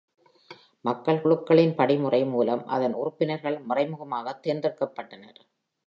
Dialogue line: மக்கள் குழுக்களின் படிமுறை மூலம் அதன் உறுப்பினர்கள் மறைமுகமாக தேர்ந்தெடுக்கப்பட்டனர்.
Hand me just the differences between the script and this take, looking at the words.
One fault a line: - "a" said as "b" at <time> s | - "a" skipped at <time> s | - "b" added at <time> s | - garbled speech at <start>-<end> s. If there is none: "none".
none